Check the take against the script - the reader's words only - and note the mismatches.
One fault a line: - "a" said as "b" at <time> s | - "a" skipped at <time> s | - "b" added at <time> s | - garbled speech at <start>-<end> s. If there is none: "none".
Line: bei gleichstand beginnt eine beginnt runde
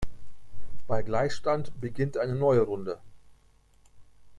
- "beginnt" said as "neue" at 2.3 s